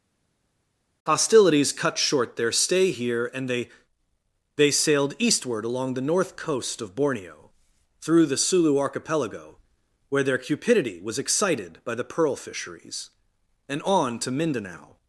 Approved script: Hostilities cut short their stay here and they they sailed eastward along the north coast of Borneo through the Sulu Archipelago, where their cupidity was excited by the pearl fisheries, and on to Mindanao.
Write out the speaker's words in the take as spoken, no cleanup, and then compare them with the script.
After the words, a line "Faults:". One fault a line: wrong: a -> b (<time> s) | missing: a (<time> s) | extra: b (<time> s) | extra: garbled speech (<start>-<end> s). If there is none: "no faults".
Hostilities cut short their stay here and they they sailed eastward along the north coast of Borneo through the Sulu Archipelago, where their cupidity was excited by the pearl fisheries, and on to Mindanao.
Faults:
no faults